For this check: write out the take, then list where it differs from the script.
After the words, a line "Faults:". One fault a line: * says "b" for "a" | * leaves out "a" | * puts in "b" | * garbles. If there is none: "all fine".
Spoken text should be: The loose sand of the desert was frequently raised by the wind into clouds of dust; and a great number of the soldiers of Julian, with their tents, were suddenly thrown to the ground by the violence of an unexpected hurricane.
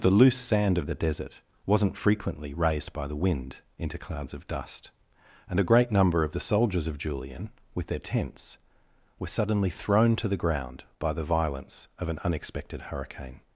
The loose sand of the desert wasn't frequently raised by the wind into clouds of dust; and a great number of the soldiers of Julian, with their tents, were suddenly thrown to the ground by the violence of an unexpected hurricane.
Faults:
* says "wasn't" for "was"